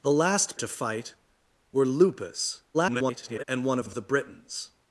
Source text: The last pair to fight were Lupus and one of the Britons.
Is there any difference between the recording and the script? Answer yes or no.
yes